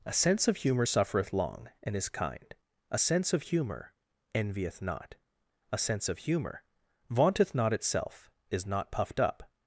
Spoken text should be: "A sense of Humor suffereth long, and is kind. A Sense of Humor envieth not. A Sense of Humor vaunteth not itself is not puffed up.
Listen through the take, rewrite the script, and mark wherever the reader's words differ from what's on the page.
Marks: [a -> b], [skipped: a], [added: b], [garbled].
"A sense of Humor suffereth long, and is kind. A Sense of Humor envieth not. A Sense of Humor vaunteth not itself is not puffed up.